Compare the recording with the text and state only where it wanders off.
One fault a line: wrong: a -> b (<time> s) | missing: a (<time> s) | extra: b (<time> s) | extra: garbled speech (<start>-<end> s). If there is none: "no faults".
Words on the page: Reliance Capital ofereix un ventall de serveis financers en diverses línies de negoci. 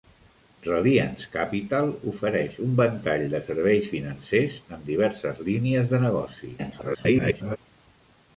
extra: garbled speech (6.6-7.6 s)